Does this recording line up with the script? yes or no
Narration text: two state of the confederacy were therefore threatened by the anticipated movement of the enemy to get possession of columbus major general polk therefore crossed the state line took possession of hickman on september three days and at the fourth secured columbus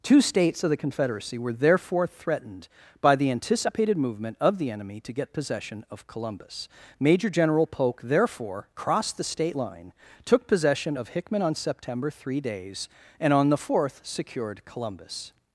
no